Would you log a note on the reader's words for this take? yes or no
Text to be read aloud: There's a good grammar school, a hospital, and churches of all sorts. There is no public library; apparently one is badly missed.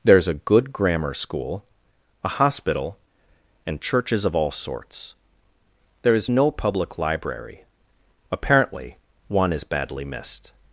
no